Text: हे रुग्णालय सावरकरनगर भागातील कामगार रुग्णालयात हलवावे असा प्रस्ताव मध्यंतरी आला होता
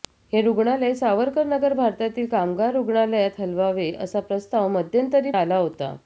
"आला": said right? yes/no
yes